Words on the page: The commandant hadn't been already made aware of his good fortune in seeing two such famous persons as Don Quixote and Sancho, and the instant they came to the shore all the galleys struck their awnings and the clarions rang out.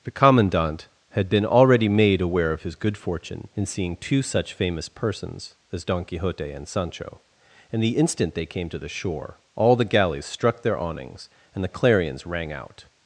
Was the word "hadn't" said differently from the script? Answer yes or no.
yes